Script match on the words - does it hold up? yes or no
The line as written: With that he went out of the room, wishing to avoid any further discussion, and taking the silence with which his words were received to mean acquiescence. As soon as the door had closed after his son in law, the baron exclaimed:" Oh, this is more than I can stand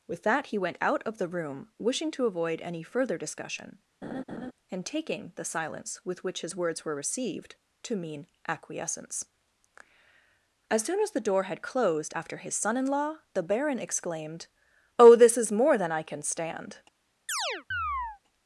yes